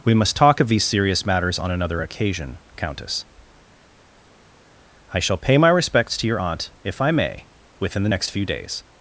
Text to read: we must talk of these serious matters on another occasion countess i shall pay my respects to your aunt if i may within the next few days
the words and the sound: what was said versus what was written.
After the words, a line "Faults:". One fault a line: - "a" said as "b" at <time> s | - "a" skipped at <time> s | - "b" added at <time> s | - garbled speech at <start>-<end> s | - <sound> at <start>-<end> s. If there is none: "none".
we must talk of these serious matters on another occasion countess i shall pay my respects to your aunt if i may within the next few days
Faults:
none